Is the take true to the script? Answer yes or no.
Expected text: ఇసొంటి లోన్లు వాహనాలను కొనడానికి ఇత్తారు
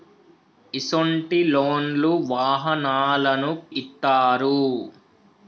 no